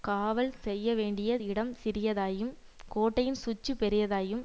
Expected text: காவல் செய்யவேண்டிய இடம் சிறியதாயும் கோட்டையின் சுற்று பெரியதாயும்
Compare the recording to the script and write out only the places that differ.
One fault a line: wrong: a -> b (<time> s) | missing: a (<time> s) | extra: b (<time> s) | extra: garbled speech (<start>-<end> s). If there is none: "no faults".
no faults